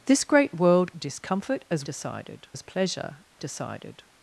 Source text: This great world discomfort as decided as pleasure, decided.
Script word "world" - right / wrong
right